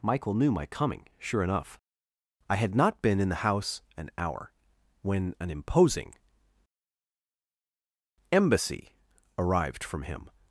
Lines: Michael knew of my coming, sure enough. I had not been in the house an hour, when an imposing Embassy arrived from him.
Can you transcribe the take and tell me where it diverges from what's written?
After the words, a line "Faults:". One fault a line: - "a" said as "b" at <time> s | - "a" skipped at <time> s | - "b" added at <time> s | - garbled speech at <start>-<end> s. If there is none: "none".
Michael knew my coming, sure enough. I had not been in the house an hour, when an imposing Embassy arrived from him.
Faults:
- "of" skipped at 0.5 s